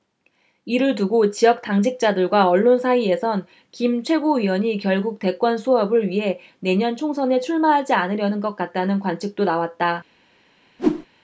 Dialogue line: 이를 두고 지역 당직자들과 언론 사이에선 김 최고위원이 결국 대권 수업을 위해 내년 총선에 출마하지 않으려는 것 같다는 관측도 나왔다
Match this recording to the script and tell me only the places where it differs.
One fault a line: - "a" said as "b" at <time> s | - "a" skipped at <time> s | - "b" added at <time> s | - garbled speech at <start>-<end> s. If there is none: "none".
none